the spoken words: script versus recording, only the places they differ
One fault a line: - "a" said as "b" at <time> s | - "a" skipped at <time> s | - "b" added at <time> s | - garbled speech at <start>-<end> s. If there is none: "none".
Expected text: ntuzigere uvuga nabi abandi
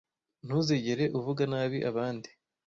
none